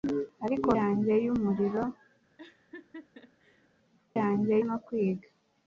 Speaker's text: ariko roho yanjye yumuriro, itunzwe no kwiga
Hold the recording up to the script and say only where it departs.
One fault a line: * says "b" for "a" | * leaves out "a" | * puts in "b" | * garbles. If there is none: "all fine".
* leaves out "roho"
* says "yanjye" for "itunzwe"